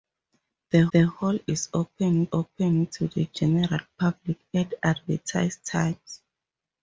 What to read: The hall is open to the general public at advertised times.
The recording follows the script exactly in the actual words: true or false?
false